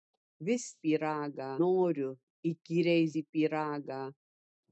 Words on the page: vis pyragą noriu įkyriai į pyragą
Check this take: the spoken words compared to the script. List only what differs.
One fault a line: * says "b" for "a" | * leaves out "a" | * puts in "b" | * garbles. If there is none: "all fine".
all fine